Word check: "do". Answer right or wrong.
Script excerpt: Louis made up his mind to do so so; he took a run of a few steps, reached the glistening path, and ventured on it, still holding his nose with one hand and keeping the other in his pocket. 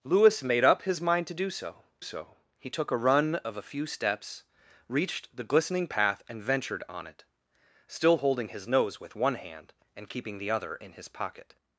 right